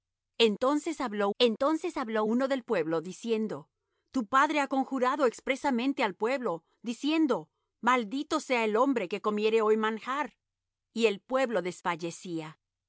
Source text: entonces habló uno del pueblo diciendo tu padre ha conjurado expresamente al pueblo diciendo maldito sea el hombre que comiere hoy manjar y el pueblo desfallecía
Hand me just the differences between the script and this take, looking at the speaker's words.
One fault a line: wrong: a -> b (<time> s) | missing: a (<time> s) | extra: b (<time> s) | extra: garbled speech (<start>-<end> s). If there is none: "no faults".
extra: entonces habló (1.4 s)